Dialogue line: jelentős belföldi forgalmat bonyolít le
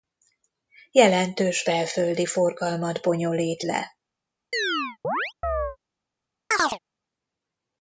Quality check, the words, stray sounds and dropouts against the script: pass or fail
fail